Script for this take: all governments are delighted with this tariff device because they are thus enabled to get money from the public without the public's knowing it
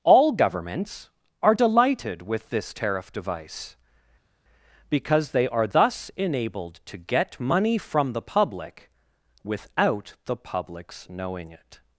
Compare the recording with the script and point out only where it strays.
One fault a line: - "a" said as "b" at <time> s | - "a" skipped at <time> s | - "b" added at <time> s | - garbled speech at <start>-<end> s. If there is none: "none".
none